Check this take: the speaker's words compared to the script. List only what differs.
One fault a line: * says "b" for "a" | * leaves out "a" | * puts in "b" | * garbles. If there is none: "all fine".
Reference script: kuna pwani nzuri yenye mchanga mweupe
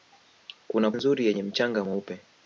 * leaves out "pwani"